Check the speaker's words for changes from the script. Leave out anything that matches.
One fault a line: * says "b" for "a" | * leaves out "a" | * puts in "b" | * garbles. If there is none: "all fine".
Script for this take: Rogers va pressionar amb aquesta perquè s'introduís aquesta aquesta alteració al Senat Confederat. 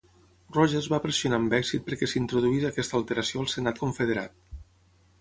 * says "èxit" for "aquesta"
* leaves out "aquesta"